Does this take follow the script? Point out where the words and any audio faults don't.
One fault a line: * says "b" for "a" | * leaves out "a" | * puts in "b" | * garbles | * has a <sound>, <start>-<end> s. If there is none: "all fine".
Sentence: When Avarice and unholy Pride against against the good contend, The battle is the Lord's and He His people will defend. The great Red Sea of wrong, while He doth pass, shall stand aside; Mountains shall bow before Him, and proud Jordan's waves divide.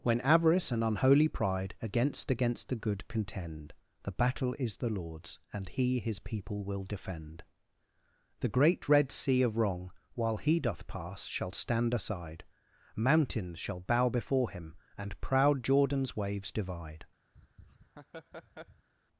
* has a laugh, 17.3-18.9 s